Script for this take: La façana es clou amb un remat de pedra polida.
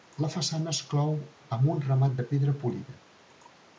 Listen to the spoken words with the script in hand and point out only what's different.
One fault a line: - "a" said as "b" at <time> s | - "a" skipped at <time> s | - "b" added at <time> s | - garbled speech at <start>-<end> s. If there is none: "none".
none